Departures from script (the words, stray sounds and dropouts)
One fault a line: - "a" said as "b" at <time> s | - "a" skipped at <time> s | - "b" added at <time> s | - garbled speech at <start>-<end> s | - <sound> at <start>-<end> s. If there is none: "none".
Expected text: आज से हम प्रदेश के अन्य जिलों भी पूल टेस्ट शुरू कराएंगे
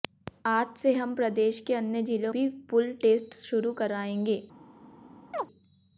- chirp at 5.3-5.5 s